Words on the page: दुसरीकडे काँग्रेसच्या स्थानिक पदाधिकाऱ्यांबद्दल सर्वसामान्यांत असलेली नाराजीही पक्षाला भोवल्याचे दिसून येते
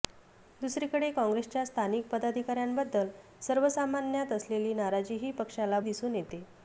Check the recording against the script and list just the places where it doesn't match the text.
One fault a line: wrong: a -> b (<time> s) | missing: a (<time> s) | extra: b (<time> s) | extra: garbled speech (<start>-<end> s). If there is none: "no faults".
missing: भोवल्याचे (5.8 s)